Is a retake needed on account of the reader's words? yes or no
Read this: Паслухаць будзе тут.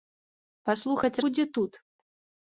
no